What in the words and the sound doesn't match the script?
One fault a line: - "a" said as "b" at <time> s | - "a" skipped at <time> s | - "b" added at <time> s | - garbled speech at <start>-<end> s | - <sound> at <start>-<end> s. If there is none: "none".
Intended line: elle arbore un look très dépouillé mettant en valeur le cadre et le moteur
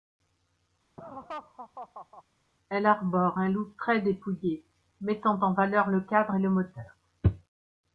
- laugh at 1.0-2.2 s